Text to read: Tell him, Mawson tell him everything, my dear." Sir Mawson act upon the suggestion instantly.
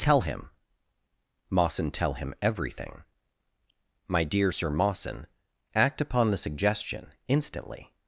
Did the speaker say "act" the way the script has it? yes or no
yes